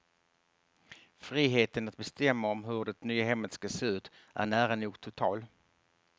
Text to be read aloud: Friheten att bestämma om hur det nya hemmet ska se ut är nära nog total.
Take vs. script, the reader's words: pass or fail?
pass